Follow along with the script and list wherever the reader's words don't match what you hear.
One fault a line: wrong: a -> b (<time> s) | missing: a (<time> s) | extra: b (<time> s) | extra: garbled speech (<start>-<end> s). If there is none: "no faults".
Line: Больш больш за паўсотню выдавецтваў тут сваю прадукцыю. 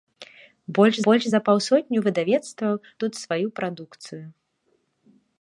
no faults